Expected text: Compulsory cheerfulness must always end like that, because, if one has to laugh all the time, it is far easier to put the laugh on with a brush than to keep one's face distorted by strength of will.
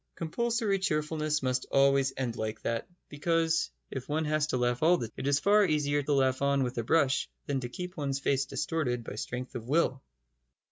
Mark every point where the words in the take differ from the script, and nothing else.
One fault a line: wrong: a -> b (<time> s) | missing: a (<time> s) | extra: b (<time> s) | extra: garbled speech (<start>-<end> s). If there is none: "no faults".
missing: time (5.1 s)
missing: to put (6.0 s)